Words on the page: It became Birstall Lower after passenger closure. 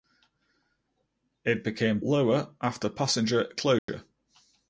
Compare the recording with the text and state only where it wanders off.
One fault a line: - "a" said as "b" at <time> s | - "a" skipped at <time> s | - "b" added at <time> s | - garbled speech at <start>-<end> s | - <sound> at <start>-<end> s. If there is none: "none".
- "Birstall" skipped at 2.0 s
- dropout at 3.8-3.9 s